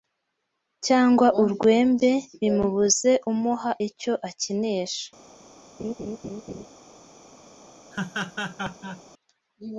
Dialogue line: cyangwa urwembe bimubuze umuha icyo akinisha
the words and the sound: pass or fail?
fail